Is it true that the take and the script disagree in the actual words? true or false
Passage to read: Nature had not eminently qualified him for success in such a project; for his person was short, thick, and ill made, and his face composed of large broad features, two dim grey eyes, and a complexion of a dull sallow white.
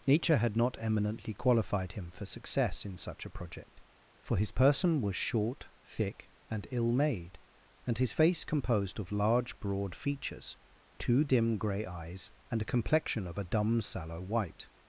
true